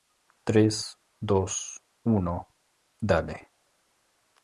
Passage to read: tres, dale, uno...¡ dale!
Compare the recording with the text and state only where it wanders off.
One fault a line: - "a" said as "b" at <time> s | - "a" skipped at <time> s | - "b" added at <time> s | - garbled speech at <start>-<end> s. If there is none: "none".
- "dale" said as "dos" at 1.2 s